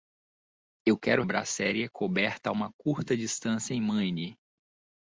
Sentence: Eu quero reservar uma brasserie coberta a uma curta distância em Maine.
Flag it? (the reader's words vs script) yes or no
yes